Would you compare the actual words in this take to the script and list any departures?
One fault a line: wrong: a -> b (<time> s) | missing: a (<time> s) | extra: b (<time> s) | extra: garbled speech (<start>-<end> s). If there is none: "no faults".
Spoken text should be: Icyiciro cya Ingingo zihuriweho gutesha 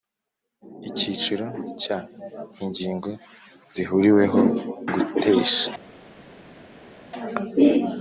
no faults